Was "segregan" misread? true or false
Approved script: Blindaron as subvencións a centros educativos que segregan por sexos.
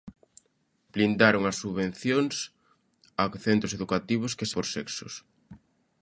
true